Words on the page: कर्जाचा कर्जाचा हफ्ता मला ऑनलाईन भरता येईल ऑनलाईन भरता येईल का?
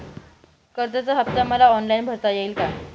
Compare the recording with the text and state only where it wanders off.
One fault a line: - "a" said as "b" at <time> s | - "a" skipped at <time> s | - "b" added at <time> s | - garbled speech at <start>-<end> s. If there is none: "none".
- "कर्जाचा" skipped at 1.1 s
- "ऑनलाईन भरता येईल" skipped at 2.5 s